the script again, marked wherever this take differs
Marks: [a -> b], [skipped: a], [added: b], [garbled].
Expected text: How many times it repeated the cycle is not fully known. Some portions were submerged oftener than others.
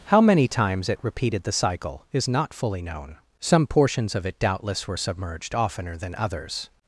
How many times it repeated the cycle is not fully known. Some portions [added: of it doubtless] were submerged oftener than others.